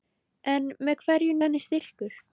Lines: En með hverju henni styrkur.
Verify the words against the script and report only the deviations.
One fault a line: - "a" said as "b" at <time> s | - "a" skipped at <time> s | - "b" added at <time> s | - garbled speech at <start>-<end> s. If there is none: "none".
none